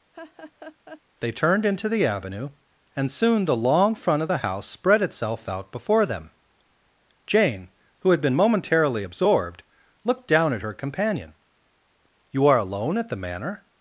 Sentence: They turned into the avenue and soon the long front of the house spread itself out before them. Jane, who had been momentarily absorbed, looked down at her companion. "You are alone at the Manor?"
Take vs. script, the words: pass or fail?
pass